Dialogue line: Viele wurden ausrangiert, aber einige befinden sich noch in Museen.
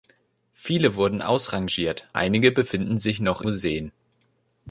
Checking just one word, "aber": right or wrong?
wrong